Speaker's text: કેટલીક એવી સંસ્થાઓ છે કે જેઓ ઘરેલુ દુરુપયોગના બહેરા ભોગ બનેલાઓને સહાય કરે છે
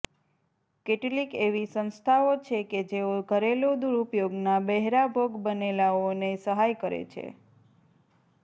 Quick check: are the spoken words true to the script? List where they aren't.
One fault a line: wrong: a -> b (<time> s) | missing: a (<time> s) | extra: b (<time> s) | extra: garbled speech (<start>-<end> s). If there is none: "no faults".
no faults